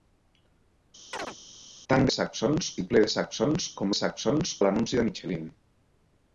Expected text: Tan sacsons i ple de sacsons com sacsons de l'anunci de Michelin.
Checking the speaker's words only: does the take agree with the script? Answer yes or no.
yes